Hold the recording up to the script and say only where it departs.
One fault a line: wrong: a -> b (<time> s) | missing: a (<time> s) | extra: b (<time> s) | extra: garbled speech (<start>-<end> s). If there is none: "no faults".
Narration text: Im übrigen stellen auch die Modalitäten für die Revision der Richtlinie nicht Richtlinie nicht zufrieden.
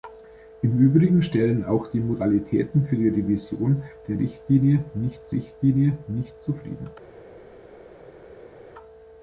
no faults